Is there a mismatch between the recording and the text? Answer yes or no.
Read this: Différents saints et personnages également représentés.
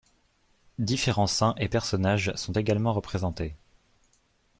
yes